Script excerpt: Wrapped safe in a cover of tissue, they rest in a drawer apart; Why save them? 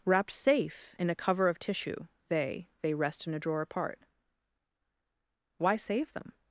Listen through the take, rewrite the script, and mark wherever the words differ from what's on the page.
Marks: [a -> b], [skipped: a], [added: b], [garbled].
Wrapped safe in a cover of tissue, they [added: they] rest in a drawer apart; Why save them?